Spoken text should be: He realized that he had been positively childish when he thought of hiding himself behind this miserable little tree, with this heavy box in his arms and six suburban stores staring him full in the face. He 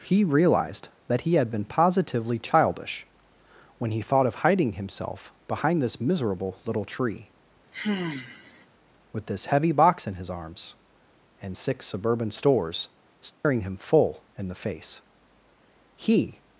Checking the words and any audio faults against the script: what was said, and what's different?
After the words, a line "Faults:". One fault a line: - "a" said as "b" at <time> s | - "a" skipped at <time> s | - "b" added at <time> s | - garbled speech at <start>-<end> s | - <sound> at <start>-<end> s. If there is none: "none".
He realized that he had been positively childish when he thought of hiding himself behind this miserable little tree, with this heavy box in his arms and six suburban stores staring him full in the face. He
Faults:
- sigh at 7.7-8.7 s
- dropout at 13.3-13.4 s